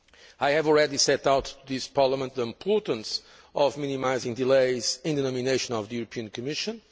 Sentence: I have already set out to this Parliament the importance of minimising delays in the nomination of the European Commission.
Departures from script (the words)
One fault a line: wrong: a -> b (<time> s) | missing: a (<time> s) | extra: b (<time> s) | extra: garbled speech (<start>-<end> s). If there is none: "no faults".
no faults